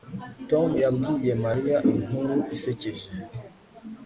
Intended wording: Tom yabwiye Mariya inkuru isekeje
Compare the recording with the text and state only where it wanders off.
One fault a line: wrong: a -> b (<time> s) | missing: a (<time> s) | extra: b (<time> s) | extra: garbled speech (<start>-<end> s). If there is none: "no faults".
no faults